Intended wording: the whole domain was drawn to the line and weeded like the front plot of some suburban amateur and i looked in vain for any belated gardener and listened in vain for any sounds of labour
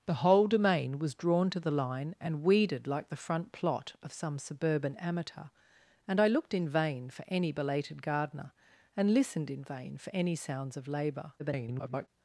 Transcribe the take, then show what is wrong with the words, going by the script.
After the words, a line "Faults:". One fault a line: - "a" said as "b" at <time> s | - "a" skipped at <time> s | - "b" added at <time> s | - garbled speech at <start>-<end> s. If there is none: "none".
the whole domain was drawn to the line and weeded like the front plot of some suburban amateur and i looked in vain for any belated gardener and listened in vain for any sounds of labour [garbled]
Faults:
- garbled speech at 11.4-12.1 s